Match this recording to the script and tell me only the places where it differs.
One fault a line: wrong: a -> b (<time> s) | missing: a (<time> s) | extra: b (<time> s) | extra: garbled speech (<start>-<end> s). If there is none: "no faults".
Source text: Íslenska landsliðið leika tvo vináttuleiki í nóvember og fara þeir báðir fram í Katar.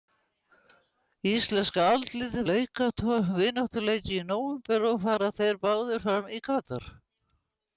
no faults